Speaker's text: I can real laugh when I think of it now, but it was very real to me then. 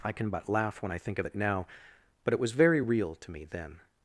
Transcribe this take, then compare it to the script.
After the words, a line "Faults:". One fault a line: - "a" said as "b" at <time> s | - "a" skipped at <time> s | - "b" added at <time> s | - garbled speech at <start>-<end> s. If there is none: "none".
I can but laugh when I think of it now, but it was very real to me then.
Faults:
- "real" said as "but" at 0.3 s